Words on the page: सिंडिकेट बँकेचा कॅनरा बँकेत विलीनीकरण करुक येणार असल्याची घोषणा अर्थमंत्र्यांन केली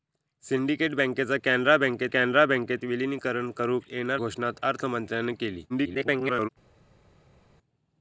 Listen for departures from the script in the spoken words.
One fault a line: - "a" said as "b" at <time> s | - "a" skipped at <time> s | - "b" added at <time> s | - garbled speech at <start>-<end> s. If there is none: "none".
- "कॅनरा बँकेत" added at 2.1 s
- "असल्याची" skipped at 4.2 s
- garbled speech at 5.7-6.5 s